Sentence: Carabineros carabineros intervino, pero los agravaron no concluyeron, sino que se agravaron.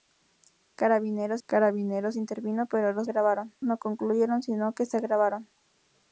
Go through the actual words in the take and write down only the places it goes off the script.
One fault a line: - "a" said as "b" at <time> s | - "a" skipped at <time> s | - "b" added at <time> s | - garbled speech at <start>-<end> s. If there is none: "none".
none